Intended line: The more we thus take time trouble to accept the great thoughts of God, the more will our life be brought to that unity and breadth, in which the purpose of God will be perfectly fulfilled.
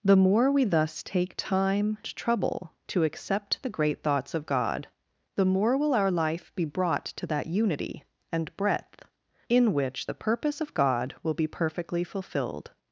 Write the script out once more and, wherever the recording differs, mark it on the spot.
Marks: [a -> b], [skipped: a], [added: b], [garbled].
The more we thus take time trouble to accept the great thoughts of God, the more will our life be brought to that unity and breadth, in which the purpose of God will be perfectly fulfilled.